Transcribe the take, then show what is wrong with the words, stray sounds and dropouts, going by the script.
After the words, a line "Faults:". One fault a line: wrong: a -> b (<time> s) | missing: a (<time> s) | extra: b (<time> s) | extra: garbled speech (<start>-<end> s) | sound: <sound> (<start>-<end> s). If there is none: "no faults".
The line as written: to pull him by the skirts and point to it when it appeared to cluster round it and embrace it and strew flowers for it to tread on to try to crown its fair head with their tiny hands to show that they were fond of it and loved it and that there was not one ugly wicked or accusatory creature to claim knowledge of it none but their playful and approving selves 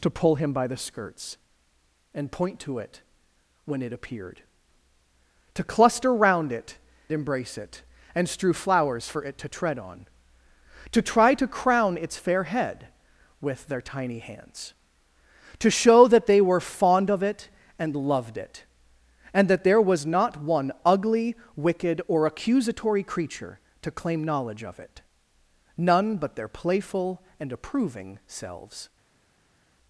to pull him by the skirts and point to it when it appeared to cluster round it embrace it and strew flowers for it to tread on to try to crown its fair head with their tiny hands to show that they were fond of it and loved it and that there was not one ugly wicked or accusatory creature to claim knowledge of it none but their playful and approving selves
Faults:
missing: and (6.8 s)